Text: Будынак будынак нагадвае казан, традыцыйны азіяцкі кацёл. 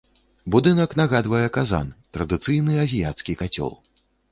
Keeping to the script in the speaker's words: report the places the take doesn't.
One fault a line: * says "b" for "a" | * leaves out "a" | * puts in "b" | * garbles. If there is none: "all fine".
* leaves out "будынак"